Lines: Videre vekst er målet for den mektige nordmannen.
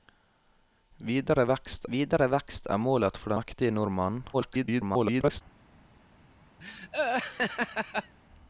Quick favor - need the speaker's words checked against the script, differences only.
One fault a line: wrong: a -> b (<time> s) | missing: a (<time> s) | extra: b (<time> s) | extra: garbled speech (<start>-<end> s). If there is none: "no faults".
extra: videre vekst (1.9 s)
missing: den (3.4 s)
extra: garbled speech (4.3-5.4 s)